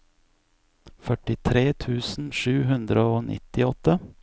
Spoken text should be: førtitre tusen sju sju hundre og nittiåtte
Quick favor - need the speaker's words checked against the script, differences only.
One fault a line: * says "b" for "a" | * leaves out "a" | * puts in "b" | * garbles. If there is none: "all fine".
* leaves out "sju"